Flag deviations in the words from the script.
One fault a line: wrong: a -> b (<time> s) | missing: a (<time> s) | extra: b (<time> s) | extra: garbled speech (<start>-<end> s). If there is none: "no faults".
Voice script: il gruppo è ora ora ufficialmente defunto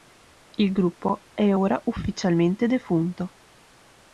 missing: ora (1.8 s)